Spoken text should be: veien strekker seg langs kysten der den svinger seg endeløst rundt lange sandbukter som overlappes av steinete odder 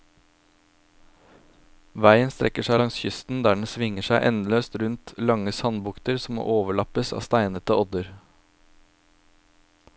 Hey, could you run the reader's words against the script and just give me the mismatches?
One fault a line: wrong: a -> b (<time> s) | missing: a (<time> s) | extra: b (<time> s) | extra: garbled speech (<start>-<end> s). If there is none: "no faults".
no faults